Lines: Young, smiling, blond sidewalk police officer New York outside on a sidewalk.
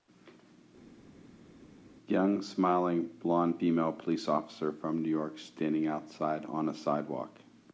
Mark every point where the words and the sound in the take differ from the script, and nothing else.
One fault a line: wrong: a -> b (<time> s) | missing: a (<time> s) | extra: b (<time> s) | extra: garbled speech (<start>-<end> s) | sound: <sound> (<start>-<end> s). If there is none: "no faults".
wrong: sidewalk -> female (3.6 s)
extra: from (4.7 s)
extra: standing (5.4 s)